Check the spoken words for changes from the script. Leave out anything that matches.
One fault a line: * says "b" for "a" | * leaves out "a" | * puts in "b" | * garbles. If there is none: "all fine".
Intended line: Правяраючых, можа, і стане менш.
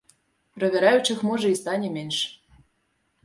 all fine